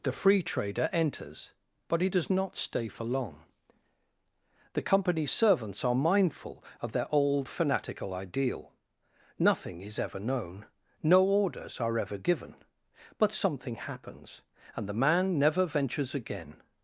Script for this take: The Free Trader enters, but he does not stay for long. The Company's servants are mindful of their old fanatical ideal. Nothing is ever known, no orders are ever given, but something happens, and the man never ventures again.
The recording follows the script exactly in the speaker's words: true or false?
true